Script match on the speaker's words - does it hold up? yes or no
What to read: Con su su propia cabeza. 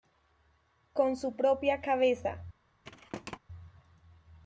no